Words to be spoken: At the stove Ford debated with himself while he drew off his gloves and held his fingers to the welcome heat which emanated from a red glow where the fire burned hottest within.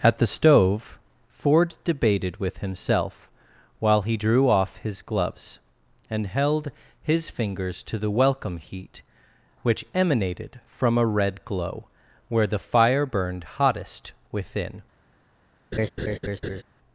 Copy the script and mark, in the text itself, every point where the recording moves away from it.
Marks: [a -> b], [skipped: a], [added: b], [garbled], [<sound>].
At the stove Ford debated with himself while he drew off his gloves and held his fingers to the welcome heat which emanated from a red glow where the fire burned hottest within. [laugh]